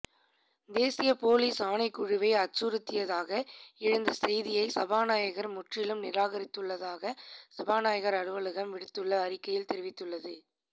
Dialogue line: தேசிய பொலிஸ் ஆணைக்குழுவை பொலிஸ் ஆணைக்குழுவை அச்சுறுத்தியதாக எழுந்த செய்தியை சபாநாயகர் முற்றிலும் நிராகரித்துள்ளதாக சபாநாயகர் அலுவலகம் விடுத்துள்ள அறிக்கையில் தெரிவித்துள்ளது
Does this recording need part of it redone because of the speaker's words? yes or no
yes